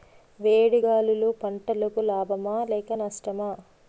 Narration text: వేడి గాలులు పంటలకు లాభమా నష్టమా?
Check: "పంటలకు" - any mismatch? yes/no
no